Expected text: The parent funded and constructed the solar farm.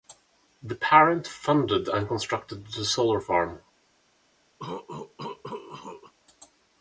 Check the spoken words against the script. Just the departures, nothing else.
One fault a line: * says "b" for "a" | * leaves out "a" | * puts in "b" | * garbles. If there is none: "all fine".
all fine